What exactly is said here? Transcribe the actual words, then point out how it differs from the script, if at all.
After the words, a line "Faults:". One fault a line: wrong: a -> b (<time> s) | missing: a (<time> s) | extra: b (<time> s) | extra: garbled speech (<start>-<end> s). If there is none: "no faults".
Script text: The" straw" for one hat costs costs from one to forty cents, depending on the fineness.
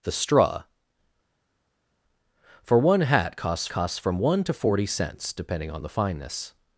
The" straw" for one hat costs costs from one to forty cents, depending on the fineness.
Faults:
no faults